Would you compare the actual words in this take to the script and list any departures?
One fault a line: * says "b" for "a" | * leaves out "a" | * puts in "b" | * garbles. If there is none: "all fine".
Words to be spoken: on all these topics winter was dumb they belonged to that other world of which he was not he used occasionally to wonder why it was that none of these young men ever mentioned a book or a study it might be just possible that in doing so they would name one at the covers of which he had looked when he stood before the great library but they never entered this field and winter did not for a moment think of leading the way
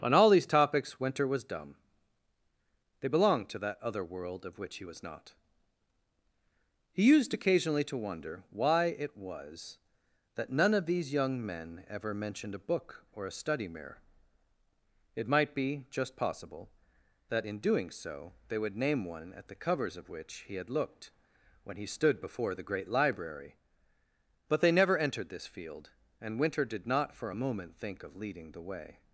* puts in "mirror"